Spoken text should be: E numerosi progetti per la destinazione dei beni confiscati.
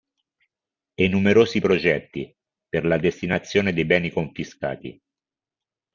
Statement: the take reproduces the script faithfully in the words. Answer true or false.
true